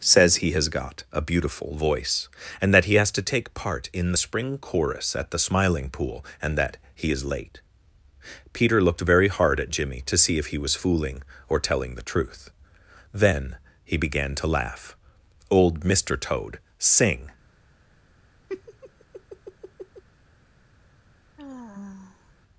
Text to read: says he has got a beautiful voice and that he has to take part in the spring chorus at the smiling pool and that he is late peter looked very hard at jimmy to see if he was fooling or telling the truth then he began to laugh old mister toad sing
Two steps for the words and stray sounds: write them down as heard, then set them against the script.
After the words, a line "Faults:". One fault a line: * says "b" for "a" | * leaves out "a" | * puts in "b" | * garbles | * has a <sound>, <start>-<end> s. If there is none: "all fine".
says he has got a beautiful voice and that he has to take part in the spring chorus at the smiling pool and that he is late peter looked very hard at jimmy to see if he was fooling or telling the truth then he began to laugh old mister toad sing
Faults:
* has a laugh, 18.5-20.0 s
* has a sigh, 21.4-22.3 s